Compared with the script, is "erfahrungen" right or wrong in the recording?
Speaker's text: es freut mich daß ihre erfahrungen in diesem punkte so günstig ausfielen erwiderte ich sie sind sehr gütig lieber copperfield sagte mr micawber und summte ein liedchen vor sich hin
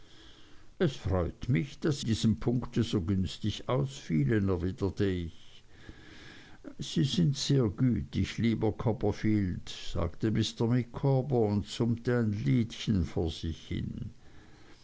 wrong